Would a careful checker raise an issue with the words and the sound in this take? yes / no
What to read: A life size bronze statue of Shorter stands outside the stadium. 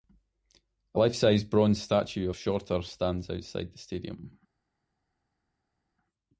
no